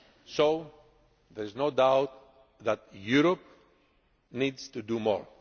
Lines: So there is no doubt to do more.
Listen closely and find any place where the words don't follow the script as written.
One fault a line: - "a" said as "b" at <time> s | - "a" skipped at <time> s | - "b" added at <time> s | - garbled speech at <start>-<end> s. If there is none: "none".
- "that Europe needs" added at 2.6 s